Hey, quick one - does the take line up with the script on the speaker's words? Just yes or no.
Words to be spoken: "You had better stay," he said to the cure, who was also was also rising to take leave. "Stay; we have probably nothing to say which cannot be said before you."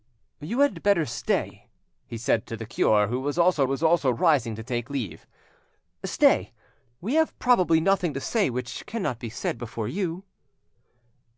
yes